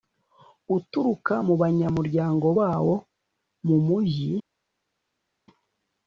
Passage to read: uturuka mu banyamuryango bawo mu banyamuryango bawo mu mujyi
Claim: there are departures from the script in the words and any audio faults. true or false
true